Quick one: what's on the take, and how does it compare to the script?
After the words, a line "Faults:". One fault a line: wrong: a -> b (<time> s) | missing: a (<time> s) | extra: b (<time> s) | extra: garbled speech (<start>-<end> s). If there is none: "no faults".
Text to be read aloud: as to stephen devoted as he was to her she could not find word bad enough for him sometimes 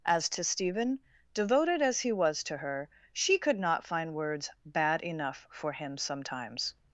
as to stephen devoted as he was to her she could not find words bad enough for him sometimes
Faults:
wrong: word -> words (4.2 s)